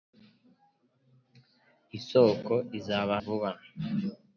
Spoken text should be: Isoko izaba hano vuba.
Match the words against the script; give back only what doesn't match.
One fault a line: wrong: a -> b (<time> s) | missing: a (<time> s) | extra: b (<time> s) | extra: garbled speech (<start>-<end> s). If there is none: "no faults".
missing: hano (3.1 s)